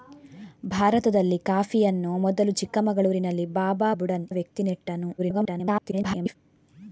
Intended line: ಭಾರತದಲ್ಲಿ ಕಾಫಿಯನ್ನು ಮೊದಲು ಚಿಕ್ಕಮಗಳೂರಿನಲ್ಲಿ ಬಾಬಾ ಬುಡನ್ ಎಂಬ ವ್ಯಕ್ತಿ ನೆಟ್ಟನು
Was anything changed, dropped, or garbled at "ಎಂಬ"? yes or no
yes